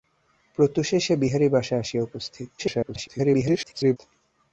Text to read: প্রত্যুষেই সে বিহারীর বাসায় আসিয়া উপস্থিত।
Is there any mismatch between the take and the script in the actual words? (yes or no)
yes